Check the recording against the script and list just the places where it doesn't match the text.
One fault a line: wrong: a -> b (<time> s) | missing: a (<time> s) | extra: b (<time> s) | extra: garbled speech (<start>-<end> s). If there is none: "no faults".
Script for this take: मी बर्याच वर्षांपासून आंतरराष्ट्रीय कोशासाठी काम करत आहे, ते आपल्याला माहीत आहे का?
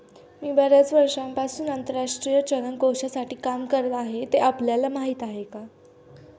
extra: चलन (2.4 s)